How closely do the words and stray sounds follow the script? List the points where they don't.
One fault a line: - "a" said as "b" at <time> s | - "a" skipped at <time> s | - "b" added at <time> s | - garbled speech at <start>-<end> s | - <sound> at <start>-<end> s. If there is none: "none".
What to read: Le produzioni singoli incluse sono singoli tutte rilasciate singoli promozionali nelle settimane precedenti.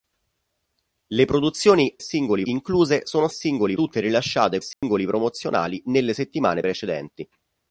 - dropout at 4.7-4.8 s